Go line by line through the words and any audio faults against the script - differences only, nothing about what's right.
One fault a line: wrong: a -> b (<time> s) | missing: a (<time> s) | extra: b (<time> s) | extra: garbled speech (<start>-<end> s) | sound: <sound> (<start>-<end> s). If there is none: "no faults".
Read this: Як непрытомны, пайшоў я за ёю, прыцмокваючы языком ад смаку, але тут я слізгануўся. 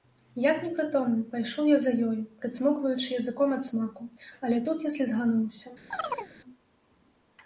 sound: chirp (5.9-6.3 s)